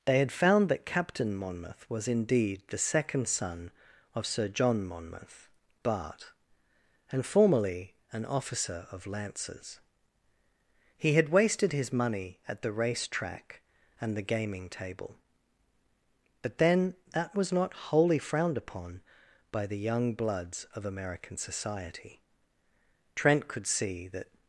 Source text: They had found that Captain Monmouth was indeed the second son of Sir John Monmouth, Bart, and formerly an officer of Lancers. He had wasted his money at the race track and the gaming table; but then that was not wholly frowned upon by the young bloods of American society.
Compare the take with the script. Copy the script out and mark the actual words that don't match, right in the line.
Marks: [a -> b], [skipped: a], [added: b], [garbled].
They had found that Captain Monmouth was indeed the second son of Sir John Monmouth, Bart, and formerly an officer of Lancers. He had wasted his money at the race track and the gaming table; but then that was not wholly frowned upon by the young bloods of American society. [added: Trent could see that]